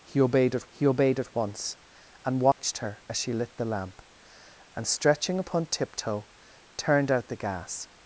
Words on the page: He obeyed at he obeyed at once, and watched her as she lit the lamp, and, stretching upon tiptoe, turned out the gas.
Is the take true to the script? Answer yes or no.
yes